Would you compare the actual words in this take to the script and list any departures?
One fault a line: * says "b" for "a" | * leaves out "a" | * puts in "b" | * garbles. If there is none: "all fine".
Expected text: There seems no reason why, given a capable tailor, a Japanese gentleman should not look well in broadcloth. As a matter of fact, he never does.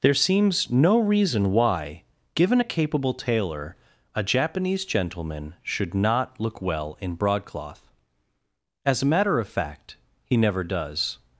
all fine